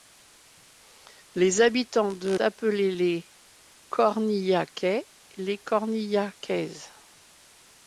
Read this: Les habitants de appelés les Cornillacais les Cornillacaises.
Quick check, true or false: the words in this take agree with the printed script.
true